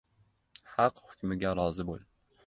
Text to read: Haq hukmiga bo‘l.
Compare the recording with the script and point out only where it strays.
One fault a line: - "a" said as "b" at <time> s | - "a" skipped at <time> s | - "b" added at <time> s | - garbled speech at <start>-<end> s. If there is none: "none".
- "rozi" added at 1.6 s